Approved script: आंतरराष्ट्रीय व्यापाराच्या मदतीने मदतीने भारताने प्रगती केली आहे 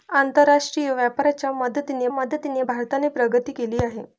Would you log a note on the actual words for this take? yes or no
no